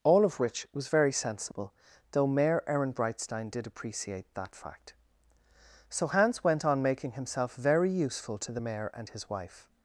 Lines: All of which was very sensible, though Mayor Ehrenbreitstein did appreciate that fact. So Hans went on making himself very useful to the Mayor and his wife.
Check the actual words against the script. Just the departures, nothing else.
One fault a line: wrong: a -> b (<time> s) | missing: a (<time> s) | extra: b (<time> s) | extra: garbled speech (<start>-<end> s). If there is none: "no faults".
no faults